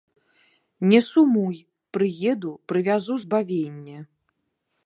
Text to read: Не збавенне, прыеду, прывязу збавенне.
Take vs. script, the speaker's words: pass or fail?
fail